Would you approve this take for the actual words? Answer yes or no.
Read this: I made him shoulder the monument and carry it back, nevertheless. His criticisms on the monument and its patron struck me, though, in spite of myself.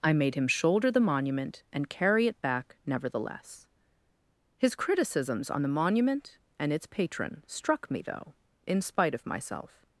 yes